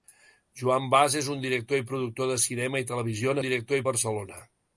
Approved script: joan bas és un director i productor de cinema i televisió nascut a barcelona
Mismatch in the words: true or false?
true